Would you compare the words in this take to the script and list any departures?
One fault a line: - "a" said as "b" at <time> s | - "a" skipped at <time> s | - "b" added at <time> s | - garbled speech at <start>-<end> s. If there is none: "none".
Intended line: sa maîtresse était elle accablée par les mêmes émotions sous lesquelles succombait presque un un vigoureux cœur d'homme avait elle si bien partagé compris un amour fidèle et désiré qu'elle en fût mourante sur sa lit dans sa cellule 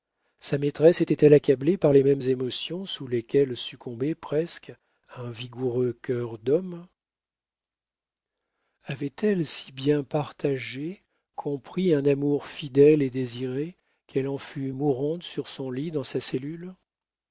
- "un" skipped at 5.3 s
- "sa" said as "son" at 15.5 s